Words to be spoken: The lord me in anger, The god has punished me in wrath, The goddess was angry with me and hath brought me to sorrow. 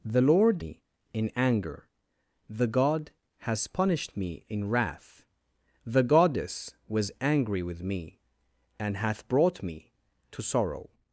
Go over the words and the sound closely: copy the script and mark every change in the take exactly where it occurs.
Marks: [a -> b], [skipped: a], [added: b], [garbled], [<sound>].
The lord me in anger, The god has punished me in wrath, The goddess was angry with me and hath brought me to sorrow.